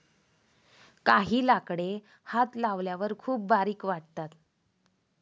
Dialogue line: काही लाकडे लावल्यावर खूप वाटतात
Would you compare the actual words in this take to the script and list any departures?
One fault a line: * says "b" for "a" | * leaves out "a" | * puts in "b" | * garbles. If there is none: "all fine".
* puts in "हात"
* puts in "बारीक"